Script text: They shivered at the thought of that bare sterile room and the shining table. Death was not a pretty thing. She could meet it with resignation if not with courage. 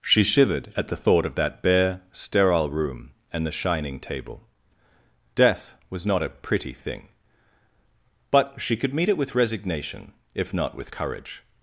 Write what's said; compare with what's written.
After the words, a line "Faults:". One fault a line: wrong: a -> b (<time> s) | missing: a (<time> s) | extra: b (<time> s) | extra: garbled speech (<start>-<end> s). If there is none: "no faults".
She shivered at the thought of that bare sterile room and the shining table. Death was not a pretty thing. But she could meet it with resignation if not with courage.
Faults:
wrong: They -> She (0.0 s)
extra: But (8.3 s)